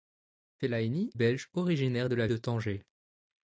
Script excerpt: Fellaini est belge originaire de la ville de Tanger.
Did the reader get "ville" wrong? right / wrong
wrong